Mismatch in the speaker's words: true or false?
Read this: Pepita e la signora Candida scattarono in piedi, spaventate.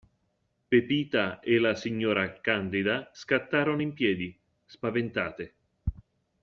false